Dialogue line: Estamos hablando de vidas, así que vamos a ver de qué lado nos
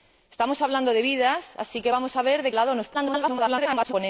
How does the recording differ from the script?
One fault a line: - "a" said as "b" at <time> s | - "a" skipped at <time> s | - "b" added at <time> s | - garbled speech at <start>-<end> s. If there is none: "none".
- "qué" skipped at 2.5 s
- garbled speech at 2.9-3.9 s